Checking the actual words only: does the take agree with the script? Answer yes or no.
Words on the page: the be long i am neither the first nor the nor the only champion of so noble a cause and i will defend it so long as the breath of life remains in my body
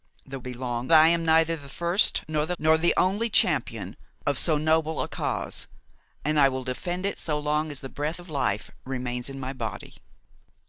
yes